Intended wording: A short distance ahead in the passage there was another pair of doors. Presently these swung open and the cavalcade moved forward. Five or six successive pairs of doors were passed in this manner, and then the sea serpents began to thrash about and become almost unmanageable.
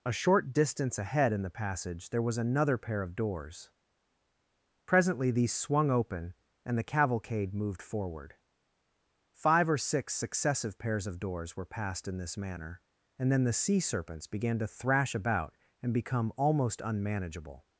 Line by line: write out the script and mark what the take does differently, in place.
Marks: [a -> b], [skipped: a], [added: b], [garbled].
A short distance ahead in the passage there was another pair of doors. Presently these swung open and the cavalcade moved forward. Five or six successive pairs of doors were passed in this manner, and then the sea serpents began to thrash about and become almost unmanageable.